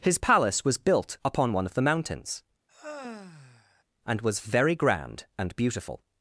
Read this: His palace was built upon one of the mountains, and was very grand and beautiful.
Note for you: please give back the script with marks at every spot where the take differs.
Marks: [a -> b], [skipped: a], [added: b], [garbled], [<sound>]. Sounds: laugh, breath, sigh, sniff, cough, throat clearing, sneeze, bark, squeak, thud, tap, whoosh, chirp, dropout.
His palace was built upon one of the mountains, [sigh] and was very grand and beautiful.